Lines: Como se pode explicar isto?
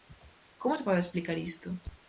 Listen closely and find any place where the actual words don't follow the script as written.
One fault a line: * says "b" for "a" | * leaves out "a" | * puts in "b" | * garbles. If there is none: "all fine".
all fine